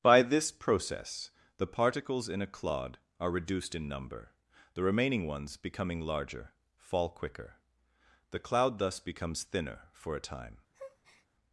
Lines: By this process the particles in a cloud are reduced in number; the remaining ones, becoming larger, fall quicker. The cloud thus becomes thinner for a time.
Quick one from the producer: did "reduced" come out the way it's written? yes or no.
yes